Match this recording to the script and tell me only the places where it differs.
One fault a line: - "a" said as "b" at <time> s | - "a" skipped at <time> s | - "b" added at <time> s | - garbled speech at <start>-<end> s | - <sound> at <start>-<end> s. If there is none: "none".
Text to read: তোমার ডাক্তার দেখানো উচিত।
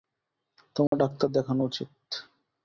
- dropout at 0.9-0.9 s